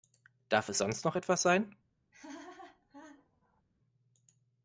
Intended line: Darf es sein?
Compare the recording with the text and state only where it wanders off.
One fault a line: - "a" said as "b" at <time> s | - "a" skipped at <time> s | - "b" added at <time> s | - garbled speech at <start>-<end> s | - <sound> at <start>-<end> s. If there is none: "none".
- "sonst noch etwas" added at 0.8 s
- laugh at 2.1-3.6 s